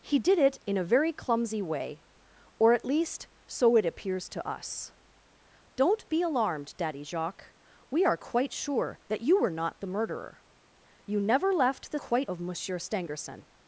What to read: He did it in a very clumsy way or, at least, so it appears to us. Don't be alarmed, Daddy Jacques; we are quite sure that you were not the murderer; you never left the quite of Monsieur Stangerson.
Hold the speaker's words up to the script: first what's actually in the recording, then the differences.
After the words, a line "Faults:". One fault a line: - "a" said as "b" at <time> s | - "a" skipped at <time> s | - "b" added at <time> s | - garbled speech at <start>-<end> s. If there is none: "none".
He did it in a very clumsy way or, at least, so it appears to us. Don't be alarmed, Daddy Jacques; we are quite sure that you were not the murderer; you never left the quite of Monsieur Stangerson.
Faults:
none